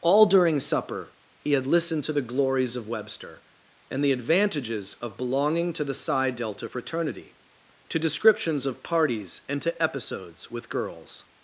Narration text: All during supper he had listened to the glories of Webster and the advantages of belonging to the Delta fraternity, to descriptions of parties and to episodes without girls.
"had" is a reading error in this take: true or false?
false